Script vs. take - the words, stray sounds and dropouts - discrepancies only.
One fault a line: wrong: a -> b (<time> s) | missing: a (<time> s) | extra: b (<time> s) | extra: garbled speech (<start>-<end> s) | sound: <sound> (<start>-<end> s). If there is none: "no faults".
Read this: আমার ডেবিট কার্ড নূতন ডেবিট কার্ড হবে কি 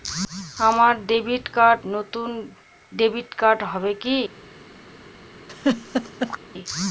sound: laugh (5.5-6.4 s)